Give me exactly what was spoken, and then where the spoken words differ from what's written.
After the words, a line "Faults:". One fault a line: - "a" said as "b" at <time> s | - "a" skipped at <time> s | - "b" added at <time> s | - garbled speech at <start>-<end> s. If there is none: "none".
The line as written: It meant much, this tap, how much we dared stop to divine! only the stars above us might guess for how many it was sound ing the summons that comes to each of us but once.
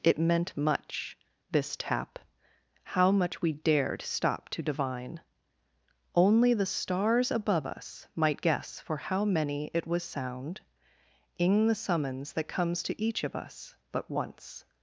It meant much, this tap, how much we dared stop to divine! only the stars above us might guess for how many it was sound ing the summons that comes to each of us but once.
Faults:
none